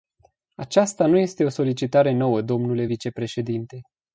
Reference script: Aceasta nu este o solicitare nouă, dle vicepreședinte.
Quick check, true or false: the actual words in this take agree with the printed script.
true